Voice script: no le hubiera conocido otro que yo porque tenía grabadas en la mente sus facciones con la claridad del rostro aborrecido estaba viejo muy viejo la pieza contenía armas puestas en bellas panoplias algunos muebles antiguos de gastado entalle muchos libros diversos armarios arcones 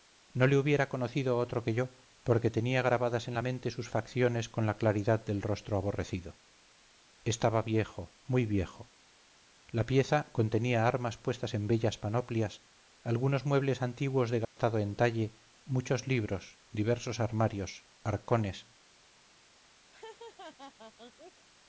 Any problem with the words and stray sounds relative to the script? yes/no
yes